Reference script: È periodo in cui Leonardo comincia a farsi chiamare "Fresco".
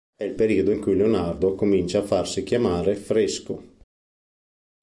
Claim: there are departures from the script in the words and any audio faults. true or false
true